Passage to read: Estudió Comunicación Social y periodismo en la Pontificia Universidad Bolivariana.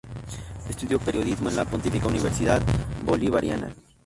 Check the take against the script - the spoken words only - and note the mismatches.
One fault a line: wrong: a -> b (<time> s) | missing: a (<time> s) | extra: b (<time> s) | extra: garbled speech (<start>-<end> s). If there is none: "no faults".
missing: Comunicación Social (1.0 s)